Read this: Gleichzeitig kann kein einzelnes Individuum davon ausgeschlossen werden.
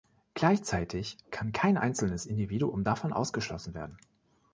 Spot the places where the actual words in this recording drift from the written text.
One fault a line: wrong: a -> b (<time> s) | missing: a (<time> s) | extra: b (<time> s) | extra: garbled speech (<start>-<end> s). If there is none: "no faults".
no faults